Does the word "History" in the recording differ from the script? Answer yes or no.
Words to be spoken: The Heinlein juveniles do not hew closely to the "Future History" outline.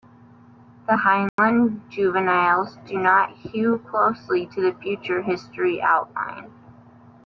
no